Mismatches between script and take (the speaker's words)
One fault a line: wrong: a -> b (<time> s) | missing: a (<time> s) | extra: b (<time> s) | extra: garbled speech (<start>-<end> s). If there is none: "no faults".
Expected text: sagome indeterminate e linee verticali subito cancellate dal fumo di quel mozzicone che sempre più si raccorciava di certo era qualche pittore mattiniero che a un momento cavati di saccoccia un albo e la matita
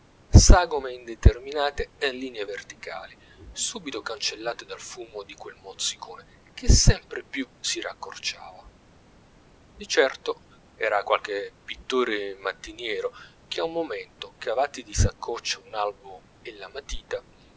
no faults